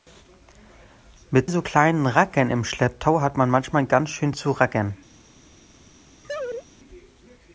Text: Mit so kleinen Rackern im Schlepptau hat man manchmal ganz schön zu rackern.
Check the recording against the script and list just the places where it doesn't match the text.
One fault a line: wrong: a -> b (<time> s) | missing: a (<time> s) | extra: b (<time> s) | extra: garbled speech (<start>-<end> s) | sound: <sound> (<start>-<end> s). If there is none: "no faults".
sound: laugh (6.2-6.7 s)